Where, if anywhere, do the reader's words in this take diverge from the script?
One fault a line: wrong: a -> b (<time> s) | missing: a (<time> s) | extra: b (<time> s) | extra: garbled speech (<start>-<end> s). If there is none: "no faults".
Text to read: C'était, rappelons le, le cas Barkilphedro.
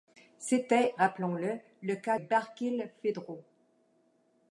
no faults